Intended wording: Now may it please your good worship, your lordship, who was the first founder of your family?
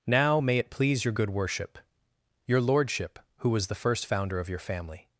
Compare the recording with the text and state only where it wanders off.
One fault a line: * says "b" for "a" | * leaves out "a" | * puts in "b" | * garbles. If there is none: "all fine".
all fine